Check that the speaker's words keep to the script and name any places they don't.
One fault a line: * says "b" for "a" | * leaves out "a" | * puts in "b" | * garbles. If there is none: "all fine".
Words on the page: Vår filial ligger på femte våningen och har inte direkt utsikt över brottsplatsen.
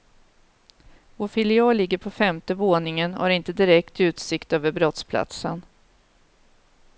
all fine